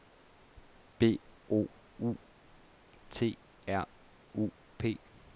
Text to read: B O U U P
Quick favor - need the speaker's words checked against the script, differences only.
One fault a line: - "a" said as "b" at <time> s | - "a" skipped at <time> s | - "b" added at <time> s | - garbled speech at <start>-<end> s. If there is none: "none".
- "T R" added at 3.1 s